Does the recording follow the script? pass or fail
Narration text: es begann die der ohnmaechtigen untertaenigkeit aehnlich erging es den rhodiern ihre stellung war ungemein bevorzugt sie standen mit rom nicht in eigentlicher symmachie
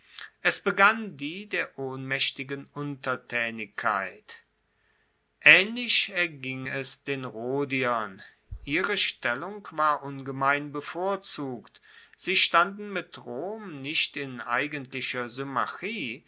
pass